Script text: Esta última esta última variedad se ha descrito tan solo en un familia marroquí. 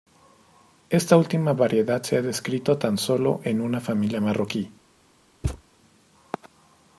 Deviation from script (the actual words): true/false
true